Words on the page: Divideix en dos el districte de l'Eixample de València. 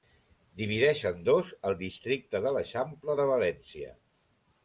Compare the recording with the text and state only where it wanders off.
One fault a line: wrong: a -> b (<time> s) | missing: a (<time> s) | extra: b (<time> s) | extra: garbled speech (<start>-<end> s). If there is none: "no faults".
no faults